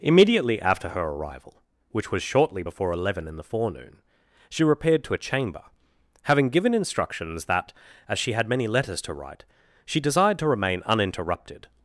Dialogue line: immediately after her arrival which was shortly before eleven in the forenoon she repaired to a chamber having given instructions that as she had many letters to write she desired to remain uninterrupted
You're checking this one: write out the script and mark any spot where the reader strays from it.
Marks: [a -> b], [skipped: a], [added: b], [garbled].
immediately after her arrival which was shortly before eleven in the forenoon she repaired to a chamber having given instructions that as she had many letters to write she desired to remain uninterrupted